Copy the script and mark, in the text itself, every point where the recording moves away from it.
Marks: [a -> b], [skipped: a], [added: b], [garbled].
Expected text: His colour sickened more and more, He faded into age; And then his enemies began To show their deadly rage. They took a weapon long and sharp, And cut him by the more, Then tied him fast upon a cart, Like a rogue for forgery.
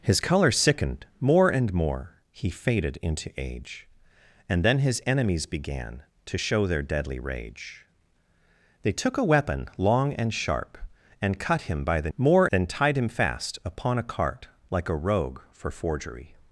His colour sickened more and more, He faded into age; And then his enemies began To show their deadly rage. They took a weapon long and sharp, And cut him by the more, Then tied him fast upon a cart, Like a rogue for forgery.